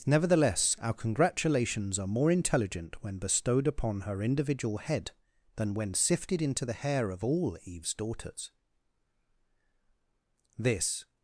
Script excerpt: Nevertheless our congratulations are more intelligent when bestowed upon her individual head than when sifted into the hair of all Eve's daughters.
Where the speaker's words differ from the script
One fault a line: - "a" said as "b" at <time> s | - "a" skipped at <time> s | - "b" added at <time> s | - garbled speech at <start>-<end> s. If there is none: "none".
- "This" added at 10.6 s